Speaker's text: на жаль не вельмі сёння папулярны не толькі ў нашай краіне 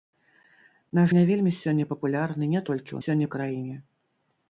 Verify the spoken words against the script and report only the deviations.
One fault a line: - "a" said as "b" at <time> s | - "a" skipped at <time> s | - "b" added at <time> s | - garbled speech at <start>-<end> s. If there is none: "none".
- "жаль" skipped at 1.0 s
- "нашай" said as "сёння" at 3.0 s